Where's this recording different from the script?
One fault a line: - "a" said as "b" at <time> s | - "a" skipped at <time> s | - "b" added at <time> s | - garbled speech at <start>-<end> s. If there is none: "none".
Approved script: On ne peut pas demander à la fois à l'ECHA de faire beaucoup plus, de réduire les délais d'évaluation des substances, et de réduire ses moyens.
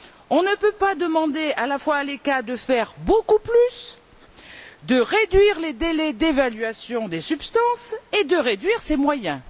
none